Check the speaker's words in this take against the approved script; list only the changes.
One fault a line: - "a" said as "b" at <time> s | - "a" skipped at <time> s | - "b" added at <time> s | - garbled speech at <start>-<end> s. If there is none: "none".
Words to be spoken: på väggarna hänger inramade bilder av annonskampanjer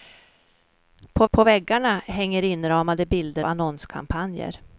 - "på" added at 1.3 s
- "av" skipped at 3.4 s